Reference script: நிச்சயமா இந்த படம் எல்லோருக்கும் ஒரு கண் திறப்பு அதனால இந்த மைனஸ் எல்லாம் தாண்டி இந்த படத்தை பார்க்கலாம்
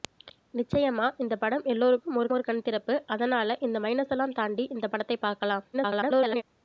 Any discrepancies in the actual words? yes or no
yes